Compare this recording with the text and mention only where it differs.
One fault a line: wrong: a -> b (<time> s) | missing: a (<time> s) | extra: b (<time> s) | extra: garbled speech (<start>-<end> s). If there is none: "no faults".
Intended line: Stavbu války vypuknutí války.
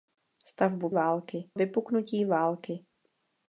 no faults